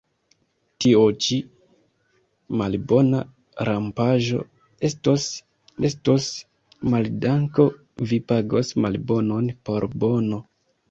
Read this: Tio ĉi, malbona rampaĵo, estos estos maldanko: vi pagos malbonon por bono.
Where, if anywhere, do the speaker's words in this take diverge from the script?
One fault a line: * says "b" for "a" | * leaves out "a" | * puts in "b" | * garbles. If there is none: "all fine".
all fine